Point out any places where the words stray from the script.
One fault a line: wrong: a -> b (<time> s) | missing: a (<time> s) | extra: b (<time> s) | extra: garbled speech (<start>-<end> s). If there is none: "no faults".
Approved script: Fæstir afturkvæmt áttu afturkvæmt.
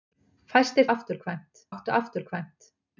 no faults